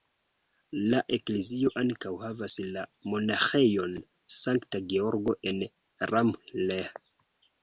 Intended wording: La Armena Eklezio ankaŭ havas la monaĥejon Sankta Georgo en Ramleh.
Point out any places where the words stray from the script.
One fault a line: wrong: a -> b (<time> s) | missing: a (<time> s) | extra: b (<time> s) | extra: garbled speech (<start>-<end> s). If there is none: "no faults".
missing: Armena (1.0 s)